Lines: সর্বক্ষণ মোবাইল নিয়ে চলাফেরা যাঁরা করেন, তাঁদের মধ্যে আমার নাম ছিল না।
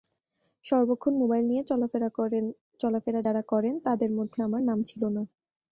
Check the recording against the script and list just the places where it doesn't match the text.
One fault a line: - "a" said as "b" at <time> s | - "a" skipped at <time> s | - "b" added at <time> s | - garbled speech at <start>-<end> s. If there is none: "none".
none